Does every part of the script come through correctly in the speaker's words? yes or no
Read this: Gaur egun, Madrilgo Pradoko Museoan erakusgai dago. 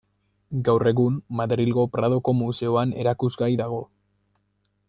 yes